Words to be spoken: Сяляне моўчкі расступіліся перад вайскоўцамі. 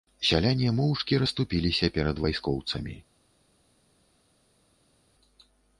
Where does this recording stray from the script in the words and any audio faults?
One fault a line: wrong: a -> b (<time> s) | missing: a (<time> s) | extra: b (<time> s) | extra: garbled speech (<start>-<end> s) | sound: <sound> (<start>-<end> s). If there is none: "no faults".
no faults